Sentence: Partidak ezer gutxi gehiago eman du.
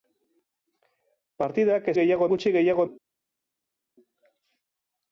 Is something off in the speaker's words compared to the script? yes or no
yes